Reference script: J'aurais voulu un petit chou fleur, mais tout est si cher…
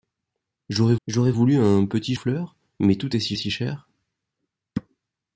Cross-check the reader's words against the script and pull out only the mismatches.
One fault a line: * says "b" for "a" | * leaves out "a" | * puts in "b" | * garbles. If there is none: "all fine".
* puts in "j'aurais"
* leaves out "chou"
* puts in "si"